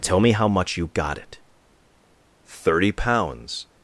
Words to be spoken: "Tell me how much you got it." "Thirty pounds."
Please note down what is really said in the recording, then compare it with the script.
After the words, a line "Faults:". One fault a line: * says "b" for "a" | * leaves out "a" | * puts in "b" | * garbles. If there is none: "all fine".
"Tell me how much you got it." "Thirty pounds."
Faults:
all fine